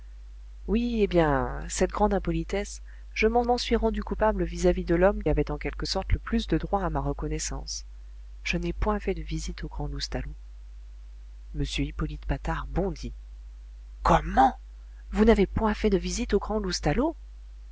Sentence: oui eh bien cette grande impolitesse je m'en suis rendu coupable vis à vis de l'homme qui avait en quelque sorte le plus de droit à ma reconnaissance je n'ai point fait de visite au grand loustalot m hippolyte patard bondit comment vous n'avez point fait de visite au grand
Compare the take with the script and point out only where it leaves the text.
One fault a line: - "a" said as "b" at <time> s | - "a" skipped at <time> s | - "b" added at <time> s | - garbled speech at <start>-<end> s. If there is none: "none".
- "m'en" added at 3.4 s
- "qui" skipped at 5.2 s